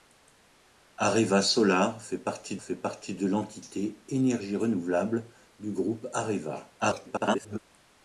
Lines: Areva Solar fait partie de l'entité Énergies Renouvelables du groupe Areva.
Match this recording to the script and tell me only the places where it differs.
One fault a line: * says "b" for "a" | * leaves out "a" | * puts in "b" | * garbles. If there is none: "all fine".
* puts in "fait partie"
* garbles